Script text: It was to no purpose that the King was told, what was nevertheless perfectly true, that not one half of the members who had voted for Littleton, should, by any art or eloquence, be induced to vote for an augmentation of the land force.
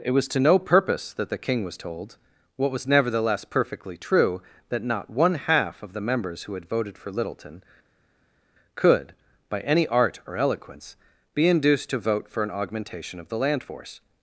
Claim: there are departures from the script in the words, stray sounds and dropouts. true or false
true